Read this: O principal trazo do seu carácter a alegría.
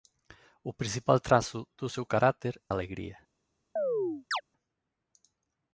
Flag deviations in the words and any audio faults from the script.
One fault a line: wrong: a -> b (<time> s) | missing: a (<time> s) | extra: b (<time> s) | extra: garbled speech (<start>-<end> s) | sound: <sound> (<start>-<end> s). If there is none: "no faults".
sound: chirp (3.8-4.4 s)